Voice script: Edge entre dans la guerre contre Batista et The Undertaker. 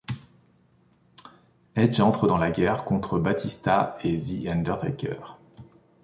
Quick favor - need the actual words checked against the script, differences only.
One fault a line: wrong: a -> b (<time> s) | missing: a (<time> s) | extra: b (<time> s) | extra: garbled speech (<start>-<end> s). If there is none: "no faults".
no faults